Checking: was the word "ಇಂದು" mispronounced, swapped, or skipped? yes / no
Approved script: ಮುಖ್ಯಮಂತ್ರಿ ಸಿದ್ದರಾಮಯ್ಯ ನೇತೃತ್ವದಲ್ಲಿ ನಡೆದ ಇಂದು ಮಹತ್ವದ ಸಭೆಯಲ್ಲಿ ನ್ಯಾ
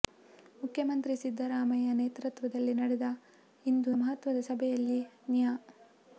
no